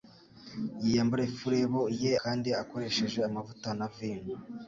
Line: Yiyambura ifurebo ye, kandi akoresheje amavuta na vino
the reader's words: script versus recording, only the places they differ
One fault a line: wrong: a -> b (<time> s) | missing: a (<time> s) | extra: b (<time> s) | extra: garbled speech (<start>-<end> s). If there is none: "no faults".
no faults